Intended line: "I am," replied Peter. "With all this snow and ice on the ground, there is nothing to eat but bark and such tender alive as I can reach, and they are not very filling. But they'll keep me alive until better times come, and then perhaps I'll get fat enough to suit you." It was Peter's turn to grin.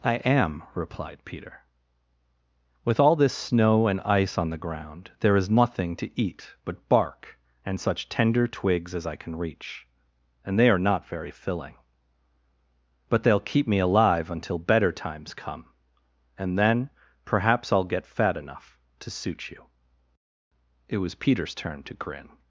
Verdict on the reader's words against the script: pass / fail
fail